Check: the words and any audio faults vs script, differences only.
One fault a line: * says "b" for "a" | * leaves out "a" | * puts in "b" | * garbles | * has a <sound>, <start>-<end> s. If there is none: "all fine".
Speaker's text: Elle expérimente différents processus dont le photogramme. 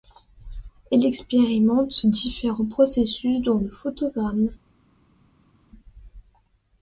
all fine